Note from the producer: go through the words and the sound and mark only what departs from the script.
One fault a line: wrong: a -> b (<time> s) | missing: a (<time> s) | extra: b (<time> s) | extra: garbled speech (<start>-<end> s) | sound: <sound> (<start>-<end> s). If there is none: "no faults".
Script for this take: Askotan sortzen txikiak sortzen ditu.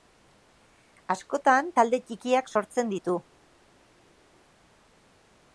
wrong: sortzen -> talde (1.8 s)